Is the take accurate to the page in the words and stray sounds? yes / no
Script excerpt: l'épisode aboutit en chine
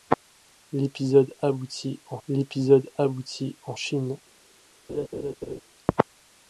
no